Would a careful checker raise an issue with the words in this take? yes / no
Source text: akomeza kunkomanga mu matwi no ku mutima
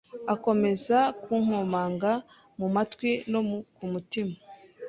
no